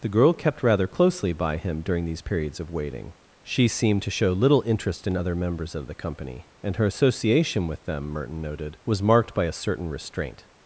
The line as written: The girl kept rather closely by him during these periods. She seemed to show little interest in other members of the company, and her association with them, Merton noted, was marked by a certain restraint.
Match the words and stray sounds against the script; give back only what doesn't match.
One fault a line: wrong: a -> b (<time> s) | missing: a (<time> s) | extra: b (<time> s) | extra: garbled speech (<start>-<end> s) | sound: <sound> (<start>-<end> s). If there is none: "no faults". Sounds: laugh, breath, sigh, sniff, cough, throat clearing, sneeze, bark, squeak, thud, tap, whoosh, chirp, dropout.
extra: of waiting (2.6 s)